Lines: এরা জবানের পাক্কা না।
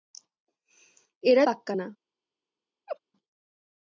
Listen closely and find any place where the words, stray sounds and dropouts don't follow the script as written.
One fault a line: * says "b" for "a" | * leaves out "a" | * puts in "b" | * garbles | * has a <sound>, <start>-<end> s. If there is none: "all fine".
* leaves out "জবানের"
* has a laugh, 2.9-3.0 s